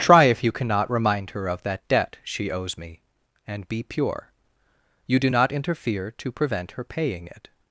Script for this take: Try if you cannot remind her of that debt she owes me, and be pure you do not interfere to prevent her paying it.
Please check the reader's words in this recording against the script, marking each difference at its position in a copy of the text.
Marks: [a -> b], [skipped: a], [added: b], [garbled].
Try if you cannot remind her of that debt she owes me, and be pure you do not interfere to prevent her paying it.